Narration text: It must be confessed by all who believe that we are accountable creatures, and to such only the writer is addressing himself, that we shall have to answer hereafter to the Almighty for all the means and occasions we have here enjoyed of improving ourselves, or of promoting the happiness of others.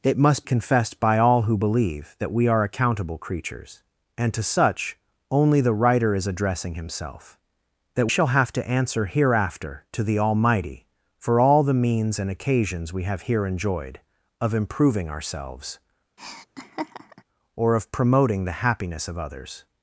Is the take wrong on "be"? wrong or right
wrong